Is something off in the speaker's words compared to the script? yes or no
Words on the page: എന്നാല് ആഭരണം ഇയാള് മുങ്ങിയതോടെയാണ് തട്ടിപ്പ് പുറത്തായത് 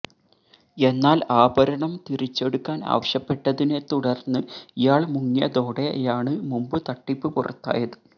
yes